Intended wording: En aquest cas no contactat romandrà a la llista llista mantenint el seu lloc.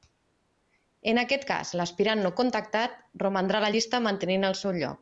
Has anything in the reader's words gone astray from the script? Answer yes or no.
yes